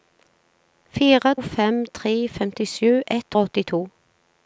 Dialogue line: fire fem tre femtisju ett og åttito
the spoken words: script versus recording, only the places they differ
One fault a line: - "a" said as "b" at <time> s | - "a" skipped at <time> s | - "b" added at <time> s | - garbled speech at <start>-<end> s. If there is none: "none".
none